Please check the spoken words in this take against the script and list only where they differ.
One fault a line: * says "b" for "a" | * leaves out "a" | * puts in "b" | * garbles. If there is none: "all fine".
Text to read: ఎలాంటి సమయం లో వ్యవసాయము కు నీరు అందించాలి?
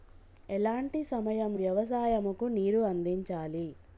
* leaves out "లో"